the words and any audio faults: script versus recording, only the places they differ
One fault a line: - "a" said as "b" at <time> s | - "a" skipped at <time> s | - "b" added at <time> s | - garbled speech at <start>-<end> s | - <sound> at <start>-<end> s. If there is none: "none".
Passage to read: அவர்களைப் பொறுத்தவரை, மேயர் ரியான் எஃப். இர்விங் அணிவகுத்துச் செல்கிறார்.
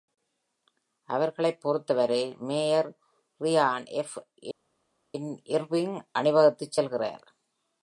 none